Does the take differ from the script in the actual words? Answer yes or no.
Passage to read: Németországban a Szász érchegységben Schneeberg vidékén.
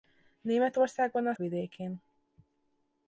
yes